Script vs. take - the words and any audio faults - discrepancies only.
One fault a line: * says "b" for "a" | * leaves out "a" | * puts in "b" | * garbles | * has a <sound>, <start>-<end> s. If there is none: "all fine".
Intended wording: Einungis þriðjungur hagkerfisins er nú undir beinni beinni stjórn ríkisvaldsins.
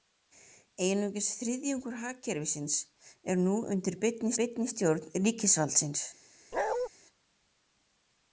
* has a bark, 6.5-6.9 s